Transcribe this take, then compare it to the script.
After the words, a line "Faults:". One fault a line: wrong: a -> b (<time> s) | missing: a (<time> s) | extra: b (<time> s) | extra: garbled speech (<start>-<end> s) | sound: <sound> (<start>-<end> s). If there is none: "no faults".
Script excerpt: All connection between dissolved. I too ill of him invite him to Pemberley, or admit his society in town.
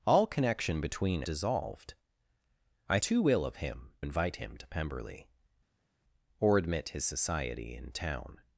All connection between dissolved. I too ill of him invite him to Pemberley, or admit his society in town.
Faults:
no faults